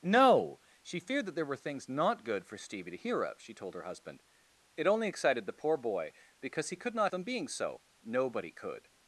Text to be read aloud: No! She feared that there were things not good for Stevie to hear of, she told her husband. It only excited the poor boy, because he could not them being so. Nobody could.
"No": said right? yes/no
yes